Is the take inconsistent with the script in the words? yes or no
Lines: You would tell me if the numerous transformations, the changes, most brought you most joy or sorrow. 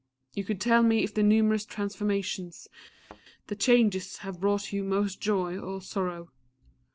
yes